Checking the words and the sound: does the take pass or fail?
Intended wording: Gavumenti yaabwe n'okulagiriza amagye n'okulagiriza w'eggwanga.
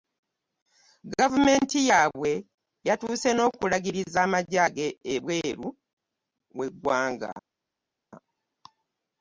fail